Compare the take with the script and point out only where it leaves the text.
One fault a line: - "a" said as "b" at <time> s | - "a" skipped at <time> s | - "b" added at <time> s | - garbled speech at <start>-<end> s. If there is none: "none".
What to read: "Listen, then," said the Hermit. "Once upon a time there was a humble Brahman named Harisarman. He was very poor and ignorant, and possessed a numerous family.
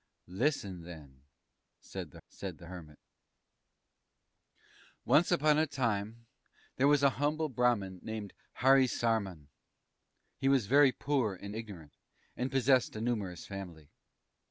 - "said the" added at 2.3 s